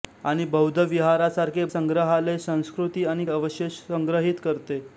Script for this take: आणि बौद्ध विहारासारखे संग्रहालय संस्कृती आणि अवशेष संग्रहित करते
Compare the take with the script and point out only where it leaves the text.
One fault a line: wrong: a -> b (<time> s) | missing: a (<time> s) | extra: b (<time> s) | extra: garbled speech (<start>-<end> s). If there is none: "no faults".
no faults